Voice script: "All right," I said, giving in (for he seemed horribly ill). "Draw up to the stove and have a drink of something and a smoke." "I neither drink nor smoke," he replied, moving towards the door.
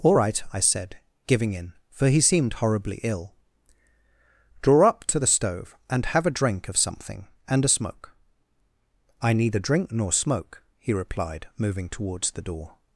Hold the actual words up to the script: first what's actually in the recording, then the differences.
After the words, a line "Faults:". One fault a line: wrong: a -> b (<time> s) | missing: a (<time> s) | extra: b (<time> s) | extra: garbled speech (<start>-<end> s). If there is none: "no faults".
"All right," I said, giving in (for he seemed horribly ill). "Draw up to the stove and have a drink of something and a smoke." "I neither drink nor smoke," he replied, moving towards the door.
Faults:
no faults